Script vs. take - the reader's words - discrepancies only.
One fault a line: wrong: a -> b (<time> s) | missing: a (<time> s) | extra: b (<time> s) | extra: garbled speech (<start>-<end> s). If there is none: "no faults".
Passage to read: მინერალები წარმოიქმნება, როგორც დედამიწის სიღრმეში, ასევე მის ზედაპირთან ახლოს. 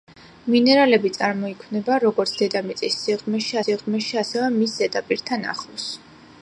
extra: სიღრმეში (3.6 s)